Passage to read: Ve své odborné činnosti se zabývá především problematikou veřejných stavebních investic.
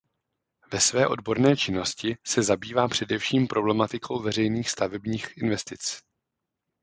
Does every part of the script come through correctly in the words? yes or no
yes